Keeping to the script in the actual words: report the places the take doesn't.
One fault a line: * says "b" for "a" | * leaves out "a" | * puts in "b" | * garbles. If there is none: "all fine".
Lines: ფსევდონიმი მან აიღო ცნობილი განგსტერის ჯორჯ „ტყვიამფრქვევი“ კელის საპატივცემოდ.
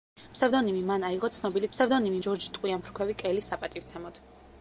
* says "ფსევდონიმი" for "განგსტერის"